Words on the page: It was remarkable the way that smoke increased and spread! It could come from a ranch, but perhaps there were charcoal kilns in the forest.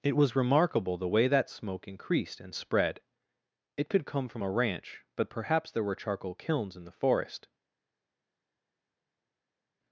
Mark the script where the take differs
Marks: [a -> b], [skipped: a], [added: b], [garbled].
It was remarkable the way that smoke increased and spread! It could come from a ranch, but perhaps there were charcoal kilns in the forest.